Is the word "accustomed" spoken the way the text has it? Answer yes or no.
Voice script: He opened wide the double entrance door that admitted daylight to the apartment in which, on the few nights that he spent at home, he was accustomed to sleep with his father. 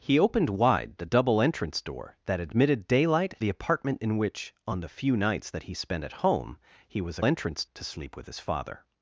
no